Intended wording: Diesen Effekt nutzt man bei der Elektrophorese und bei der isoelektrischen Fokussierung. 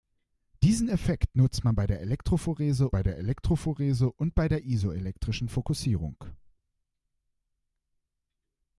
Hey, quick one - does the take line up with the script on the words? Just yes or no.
no